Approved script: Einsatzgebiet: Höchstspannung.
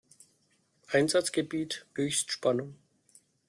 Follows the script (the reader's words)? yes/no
yes